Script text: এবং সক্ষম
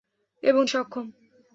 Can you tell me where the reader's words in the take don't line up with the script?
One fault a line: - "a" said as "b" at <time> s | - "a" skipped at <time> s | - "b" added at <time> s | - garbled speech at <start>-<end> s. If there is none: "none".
none